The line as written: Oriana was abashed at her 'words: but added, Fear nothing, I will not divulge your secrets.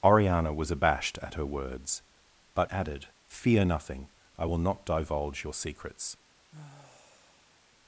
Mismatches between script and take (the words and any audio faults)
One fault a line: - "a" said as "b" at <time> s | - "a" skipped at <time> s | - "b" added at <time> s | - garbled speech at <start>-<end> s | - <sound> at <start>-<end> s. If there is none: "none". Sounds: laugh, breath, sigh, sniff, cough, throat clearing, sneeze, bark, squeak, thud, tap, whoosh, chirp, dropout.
- sigh at 6.5-7.6 s